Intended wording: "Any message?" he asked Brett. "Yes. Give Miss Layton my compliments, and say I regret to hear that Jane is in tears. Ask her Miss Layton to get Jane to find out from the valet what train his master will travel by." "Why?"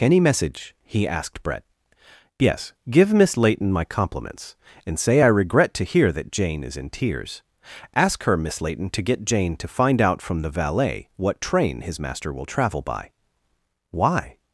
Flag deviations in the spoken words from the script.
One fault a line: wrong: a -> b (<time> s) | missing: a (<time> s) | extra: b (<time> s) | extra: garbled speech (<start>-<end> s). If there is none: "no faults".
no faults